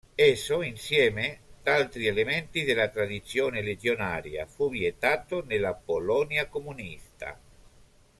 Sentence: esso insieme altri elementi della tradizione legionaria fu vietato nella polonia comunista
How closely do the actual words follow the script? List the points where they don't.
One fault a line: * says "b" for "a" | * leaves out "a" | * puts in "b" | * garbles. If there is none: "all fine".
all fine